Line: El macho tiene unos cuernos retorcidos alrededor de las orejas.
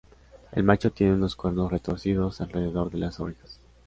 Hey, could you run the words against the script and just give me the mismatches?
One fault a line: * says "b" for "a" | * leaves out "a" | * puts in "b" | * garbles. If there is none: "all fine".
all fine